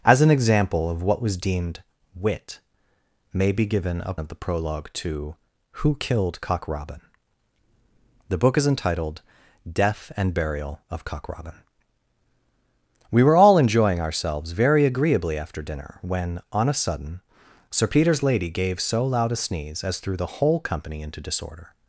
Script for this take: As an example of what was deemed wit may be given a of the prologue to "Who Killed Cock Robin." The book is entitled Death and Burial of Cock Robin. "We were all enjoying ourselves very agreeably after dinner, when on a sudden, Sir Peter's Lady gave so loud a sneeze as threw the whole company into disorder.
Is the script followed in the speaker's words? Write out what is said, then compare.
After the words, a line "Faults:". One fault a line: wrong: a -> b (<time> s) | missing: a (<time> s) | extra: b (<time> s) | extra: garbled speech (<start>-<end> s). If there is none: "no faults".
As an example of what was deemed wit may be given a of the prologue to "Who Killed Cock Robin." The book is entitled Death and Burial of Cock Robin. "We were all enjoying ourselves very agreeably after dinner, when on a sudden, Sir Peter's Lady gave so loud a sneeze as threw the whole company into disorder.
Faults:
no faults